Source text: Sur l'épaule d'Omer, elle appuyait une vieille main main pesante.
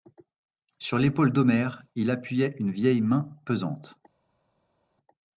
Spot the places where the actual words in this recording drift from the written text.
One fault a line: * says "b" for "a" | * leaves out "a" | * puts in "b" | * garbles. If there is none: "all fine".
* says "il" for "elle"
* leaves out "main"